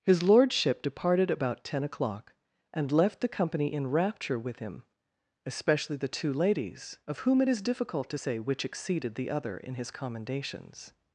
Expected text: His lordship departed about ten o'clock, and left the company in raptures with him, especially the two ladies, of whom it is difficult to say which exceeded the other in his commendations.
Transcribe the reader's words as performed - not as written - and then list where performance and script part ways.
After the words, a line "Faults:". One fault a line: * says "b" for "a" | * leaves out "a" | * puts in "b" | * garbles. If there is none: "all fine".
His lordship departed about ten o'clock, and left the company in rapture with him, especially the two ladies, of whom it is difficult to say which exceeded the other in his commendations.
Faults:
* says "rapture" for "raptures"